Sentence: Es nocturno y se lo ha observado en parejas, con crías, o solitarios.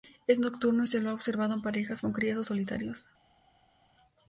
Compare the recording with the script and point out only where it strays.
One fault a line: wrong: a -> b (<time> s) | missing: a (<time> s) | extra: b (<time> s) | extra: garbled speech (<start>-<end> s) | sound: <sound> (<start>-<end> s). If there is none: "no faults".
no faults